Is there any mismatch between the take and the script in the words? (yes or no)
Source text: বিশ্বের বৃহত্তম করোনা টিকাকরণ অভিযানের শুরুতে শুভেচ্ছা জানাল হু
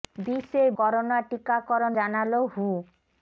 yes